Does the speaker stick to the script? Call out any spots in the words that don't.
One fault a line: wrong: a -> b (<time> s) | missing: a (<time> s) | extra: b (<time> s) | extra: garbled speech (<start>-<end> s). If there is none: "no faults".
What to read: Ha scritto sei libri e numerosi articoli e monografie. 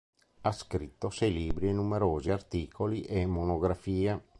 no faults